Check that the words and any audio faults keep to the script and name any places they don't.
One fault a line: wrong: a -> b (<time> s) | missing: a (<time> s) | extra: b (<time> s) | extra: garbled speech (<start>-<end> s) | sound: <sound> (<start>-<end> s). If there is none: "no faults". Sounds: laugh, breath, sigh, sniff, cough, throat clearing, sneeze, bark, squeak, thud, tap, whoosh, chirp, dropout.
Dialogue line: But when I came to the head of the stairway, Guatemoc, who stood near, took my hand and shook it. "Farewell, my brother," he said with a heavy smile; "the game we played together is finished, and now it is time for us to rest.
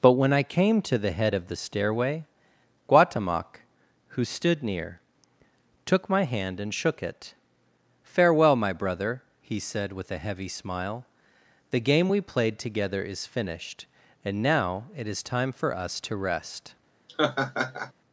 sound: laugh (17.1-17.9 s)